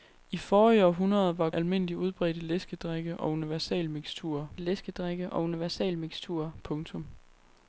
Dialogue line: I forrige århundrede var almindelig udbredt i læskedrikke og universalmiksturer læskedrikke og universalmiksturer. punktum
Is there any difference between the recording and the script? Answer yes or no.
no